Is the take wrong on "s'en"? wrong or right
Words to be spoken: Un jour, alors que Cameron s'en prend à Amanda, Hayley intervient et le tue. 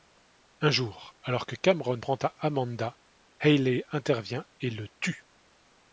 wrong